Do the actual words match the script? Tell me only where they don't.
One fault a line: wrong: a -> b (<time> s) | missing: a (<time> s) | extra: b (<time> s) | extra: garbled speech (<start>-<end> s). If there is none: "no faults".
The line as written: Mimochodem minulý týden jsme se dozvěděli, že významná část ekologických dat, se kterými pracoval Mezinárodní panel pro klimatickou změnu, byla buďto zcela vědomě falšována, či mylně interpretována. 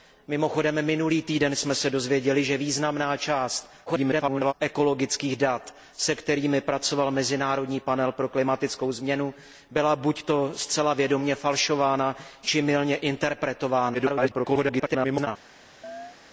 extra: garbled speech (3.9-4.5 s)
extra: garbled speech (13.9-15.3 s)